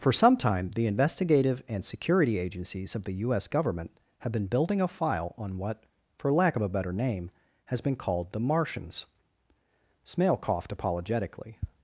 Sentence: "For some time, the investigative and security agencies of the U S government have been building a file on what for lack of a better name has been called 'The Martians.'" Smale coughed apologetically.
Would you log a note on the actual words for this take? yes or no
no